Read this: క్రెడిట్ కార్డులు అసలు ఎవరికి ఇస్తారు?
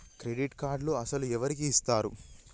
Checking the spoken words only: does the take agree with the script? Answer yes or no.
yes